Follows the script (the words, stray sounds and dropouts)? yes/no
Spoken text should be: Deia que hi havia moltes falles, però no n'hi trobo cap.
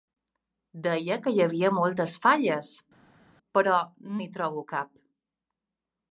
no